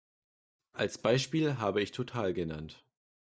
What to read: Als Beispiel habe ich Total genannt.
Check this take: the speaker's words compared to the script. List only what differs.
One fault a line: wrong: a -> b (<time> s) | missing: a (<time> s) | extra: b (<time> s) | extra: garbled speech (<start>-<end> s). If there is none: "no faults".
no faults